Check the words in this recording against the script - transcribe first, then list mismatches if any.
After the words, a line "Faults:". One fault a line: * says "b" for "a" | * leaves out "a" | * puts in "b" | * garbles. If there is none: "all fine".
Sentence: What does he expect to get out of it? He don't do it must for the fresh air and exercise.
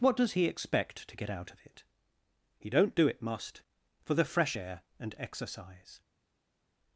What does he expect to get out of it? He don't do it must for the fresh air and exercise.
Faults:
all fine